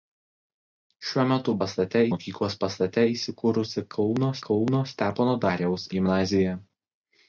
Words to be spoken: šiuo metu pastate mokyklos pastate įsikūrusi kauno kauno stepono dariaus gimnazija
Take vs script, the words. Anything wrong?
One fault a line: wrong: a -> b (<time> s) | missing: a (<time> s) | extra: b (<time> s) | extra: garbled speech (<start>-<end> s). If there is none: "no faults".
no faults